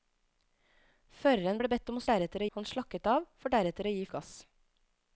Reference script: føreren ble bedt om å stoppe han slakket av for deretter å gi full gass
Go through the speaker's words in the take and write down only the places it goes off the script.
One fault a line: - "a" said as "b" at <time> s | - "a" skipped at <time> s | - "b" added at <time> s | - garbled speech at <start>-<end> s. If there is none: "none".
- "stoppe" said as "deretter" at 2.1 s
- "full" skipped at 4.1 s